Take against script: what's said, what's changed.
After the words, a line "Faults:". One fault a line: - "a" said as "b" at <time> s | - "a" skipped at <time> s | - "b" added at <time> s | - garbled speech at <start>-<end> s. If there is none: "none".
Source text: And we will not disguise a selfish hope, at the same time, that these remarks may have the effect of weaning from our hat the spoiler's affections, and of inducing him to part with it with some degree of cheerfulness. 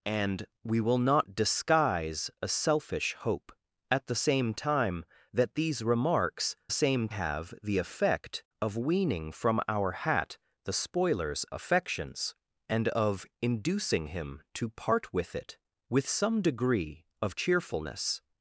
And we will not disguise a selfish hope, at the same time, that these remarks same have the effect of weaning from our hat the spoiler's affections, and of inducing him to part with it with some degree of cheerfulness.
Faults:
- "may" said as "same" at 6.7 s